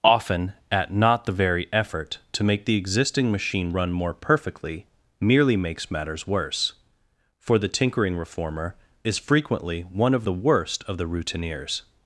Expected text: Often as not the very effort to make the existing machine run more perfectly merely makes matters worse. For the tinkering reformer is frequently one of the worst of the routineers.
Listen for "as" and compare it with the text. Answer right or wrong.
wrong